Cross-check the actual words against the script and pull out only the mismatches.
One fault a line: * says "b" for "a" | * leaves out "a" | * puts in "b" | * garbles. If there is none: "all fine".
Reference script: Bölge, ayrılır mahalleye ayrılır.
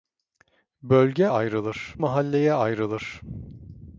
all fine